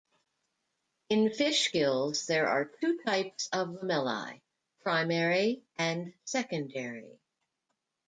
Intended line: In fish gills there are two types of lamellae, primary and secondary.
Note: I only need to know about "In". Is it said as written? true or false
true